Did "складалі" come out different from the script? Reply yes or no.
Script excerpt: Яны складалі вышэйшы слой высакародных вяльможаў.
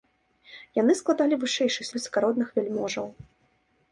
no